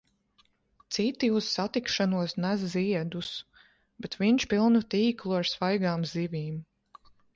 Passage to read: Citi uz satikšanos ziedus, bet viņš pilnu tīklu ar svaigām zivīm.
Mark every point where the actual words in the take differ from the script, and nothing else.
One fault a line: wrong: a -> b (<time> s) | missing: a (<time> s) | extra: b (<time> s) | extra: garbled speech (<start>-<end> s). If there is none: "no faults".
extra: nes (2.5 s)